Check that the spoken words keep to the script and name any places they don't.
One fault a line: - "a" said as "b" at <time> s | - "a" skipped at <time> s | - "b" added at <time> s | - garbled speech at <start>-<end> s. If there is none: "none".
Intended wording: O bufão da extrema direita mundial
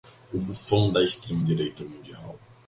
none